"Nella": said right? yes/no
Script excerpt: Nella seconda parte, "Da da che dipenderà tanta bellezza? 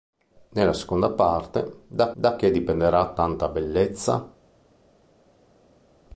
yes